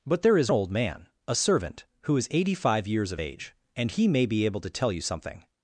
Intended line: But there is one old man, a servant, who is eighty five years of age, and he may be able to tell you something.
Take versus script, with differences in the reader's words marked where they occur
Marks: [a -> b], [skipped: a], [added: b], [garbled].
But there is [skipped: one] old man, a servant, who is eighty five years of age, and he may be able to tell you something.